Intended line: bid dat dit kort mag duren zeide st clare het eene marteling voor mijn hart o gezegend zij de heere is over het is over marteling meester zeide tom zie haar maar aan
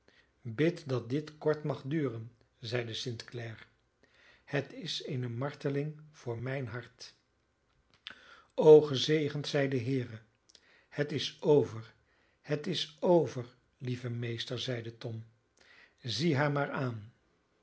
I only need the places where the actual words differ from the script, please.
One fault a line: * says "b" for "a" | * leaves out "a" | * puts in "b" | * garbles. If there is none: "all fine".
* puts in "is"
* puts in "het"
* says "lieve" for "marteling"